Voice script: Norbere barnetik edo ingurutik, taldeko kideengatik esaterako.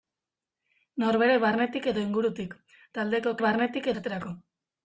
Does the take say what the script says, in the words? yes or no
no